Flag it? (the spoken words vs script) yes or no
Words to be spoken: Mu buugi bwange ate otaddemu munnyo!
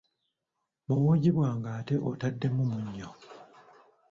no